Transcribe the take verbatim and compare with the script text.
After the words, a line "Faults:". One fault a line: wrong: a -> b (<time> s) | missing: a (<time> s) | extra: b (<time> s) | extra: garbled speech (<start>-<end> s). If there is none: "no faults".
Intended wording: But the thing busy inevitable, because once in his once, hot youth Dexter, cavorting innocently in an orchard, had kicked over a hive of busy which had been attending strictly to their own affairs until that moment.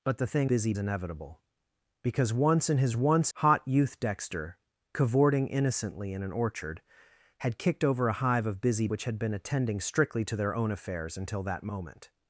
But the thing busy inevitable, because once in his once, hot youth Dexter, cavorting innocently in an orchard, had kicked over a hive of busy which had been attending strictly to their own affairs until that moment.
Faults:
no faults